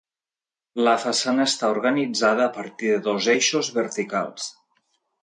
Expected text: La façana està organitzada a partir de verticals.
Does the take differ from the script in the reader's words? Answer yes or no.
yes